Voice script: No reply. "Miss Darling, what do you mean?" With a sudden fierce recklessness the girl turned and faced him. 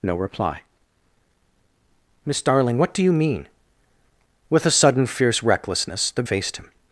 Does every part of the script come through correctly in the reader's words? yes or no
no